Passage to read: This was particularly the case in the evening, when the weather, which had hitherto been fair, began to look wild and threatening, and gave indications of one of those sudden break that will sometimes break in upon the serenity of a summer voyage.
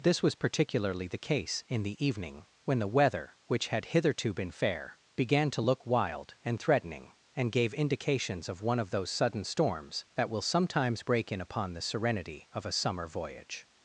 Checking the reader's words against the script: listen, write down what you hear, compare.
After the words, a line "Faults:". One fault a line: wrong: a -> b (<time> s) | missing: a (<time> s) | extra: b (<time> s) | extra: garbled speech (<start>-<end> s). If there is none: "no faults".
This was particularly the case in the evening, when the weather, which had hitherto been fair, began to look wild and threatening, and gave indications of one of those sudden storms that will sometimes break in upon the serenity of a summer voyage.
Faults:
wrong: break -> storms (9.4 s)